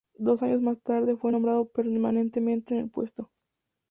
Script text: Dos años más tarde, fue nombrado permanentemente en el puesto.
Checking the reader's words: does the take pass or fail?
pass